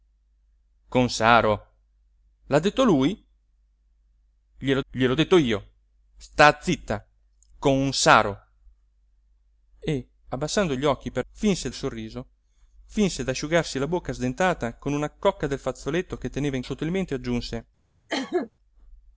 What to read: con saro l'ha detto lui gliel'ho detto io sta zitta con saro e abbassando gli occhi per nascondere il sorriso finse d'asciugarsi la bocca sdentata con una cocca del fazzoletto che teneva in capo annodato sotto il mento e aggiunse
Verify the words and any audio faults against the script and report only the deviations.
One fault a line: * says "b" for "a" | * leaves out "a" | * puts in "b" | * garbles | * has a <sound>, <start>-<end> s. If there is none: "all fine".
* puts in "gliel'ho"
* says "finse" for "nascondere"
* leaves out "capo annodato"
* has a cough, 18.1-18.5 s